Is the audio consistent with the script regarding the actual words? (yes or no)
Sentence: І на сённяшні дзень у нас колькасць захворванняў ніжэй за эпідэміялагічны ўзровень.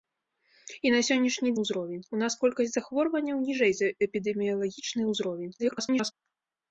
no